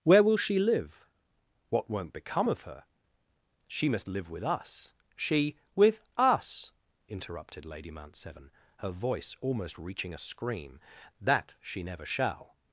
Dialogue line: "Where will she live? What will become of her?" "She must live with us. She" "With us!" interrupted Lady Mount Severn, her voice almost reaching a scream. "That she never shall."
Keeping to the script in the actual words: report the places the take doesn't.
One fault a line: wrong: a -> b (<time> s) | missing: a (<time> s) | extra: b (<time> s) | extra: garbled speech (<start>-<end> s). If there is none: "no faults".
wrong: will -> won't (1.9 s)